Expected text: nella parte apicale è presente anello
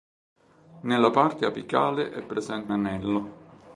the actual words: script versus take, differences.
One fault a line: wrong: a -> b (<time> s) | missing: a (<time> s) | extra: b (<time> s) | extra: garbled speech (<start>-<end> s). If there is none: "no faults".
no faults